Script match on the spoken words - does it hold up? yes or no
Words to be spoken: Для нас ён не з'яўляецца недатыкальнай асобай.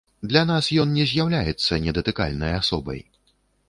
yes